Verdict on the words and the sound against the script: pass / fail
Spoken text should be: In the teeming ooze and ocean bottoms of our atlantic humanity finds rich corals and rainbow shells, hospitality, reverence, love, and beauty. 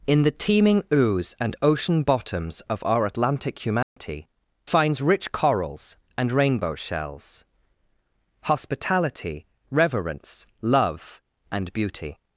fail